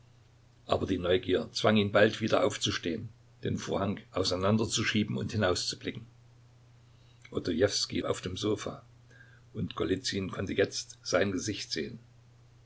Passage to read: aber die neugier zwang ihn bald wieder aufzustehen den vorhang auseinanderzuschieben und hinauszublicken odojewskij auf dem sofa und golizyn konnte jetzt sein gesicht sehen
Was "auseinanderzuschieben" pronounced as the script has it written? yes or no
yes